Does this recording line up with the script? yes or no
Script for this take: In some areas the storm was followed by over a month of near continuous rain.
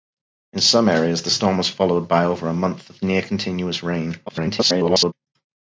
no